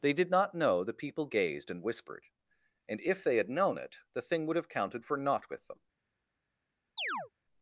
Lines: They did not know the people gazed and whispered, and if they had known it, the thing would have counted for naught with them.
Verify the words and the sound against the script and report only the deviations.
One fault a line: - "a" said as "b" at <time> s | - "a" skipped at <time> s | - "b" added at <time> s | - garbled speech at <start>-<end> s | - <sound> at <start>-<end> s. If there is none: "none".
- chirp at 7.0-7.3 s